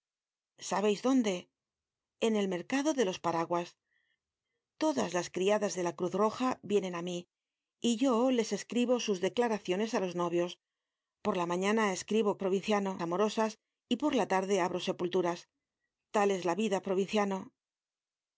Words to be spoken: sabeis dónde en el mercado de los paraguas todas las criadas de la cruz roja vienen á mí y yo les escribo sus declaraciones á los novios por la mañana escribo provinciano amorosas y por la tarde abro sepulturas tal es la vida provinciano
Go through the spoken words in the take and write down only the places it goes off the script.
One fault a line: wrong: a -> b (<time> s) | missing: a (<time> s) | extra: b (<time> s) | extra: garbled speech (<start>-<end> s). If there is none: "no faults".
no faults